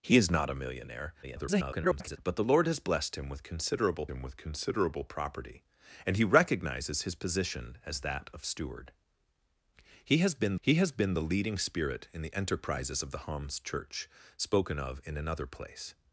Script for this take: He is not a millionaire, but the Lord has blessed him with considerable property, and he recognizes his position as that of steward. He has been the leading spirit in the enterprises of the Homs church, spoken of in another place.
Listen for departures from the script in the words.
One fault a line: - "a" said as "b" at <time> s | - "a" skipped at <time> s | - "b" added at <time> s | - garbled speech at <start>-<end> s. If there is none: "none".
- garbled speech at 1.2-2.2 s
- "him with considerable" added at 4.1 s
- "he has been" added at 10.6 s